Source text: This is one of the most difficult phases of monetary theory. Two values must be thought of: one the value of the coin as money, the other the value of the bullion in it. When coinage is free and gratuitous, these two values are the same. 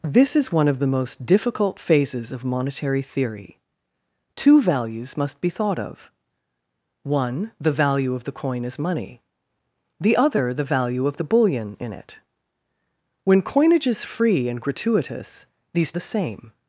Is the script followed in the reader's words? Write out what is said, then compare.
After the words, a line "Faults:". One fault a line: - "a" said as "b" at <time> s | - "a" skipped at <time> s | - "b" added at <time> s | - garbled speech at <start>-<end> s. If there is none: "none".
This is one of the most difficult phases of monetary theory. Two values must be thought of: one the value of the coin as money, the other the value of the bullion in it. When coinage is free and gratuitous, these the same.
Faults:
- "two values are" skipped at 15.9 s